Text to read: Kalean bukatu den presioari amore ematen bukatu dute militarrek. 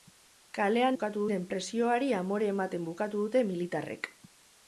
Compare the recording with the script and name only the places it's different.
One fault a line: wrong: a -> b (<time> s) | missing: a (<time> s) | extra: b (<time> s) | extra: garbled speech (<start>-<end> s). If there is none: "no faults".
no faults